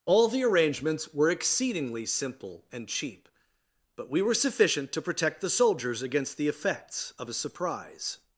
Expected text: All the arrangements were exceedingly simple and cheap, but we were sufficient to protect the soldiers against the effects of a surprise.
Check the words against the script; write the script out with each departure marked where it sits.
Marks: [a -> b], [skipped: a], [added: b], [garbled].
All the arrangements were exceedingly simple and cheap, but we were sufficient to protect the soldiers against the effects of a surprise.